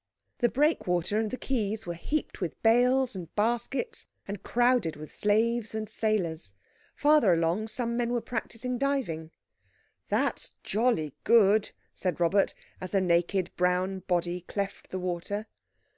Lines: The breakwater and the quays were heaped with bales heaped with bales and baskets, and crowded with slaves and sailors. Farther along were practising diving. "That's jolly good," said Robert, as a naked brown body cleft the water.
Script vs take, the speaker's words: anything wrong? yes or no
yes